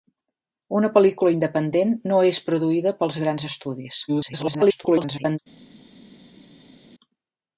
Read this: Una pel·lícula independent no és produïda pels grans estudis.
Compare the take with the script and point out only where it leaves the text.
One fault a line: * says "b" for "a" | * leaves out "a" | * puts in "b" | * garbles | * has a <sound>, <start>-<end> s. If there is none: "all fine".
* garbles